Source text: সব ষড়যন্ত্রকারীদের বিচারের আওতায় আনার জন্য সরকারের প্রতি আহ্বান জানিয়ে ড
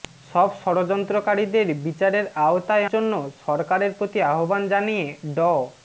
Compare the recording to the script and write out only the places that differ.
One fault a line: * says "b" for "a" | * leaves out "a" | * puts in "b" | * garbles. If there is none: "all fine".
* leaves out "আনার"